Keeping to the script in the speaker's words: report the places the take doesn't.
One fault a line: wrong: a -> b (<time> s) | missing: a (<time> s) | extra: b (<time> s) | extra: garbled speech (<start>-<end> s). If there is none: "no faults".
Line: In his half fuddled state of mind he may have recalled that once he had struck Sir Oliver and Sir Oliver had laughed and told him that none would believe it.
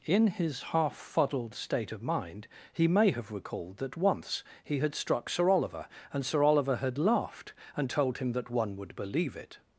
wrong: none -> one (8.5 s)